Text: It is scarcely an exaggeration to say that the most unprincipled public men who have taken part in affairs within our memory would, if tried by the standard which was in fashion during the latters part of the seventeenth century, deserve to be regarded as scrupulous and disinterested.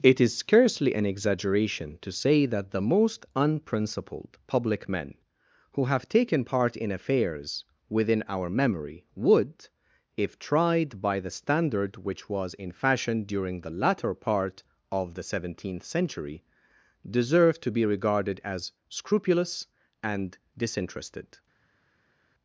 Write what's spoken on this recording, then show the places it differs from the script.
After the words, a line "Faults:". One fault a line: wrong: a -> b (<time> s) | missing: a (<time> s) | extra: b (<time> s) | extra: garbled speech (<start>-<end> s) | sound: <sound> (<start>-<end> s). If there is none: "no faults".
It is scarcely an exaggeration to say that the most unprincipled public men who have taken part in affairs within our memory would, if tried by the standard which was in fashion during the latter part of the seventeenth century, deserve to be regarded as scrupulous and disinterested.
Faults:
wrong: latters -> latter (13.7 s)